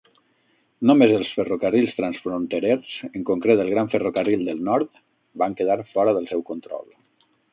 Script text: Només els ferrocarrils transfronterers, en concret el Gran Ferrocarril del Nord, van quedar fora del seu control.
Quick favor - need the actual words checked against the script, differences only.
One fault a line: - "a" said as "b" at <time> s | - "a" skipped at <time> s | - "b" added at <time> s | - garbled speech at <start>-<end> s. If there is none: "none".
none